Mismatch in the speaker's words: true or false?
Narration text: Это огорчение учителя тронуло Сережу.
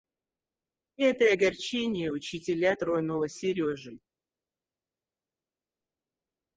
false